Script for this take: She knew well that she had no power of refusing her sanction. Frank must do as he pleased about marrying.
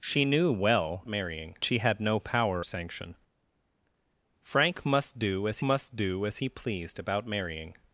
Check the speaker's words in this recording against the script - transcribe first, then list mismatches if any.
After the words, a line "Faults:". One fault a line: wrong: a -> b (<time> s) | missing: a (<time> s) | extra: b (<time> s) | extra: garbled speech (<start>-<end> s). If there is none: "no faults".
She knew well marrying she had no power sanction. Frank must do as must do as he pleased about marrying.
Faults:
wrong: that -> marrying (1.1 s)
wrong: of refusing her sanction Frank -> sanction Frank must do as (2.6 s)